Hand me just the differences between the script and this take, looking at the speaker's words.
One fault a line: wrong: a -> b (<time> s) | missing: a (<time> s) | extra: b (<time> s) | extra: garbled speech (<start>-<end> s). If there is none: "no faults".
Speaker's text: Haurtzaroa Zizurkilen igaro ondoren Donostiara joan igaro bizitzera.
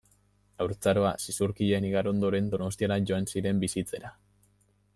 wrong: igaro -> ziren (3.3 s)